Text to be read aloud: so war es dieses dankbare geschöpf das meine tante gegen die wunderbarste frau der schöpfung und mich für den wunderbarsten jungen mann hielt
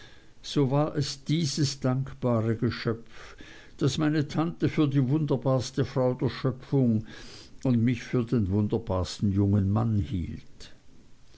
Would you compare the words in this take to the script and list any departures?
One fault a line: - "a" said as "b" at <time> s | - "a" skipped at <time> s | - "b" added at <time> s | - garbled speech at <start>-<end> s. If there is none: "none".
- "gegen" said as "für" at 4.7 s